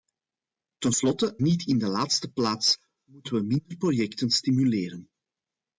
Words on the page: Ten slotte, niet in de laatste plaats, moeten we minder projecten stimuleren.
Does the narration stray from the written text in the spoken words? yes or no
no